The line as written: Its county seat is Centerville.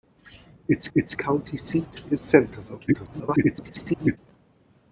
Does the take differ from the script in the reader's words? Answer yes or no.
yes